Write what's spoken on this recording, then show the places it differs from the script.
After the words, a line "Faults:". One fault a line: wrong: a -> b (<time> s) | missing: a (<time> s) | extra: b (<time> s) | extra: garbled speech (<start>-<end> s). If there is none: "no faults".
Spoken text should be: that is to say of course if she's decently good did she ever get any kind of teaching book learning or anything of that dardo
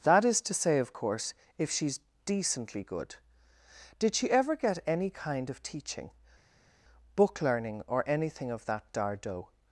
that is to say of course if she's decently good did she ever get any kind of teaching book learning or anything of that dardo
Faults:
no faults